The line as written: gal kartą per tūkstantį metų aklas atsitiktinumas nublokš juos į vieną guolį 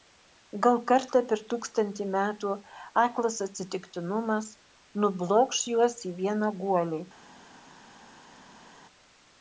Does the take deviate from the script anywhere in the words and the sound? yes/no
no